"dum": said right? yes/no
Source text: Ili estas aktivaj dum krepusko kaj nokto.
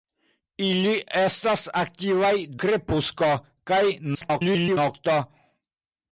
no